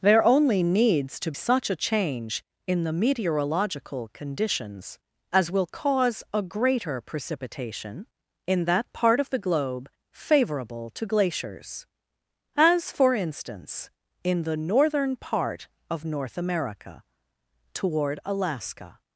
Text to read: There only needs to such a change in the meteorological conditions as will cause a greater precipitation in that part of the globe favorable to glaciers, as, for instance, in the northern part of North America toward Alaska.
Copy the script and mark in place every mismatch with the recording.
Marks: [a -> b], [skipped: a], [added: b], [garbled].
There only needs to such a change in the meteorological conditions as will cause a greater precipitation in that part of the globe favorable to glaciers, as, for instance, in the northern part of North America toward Alaska.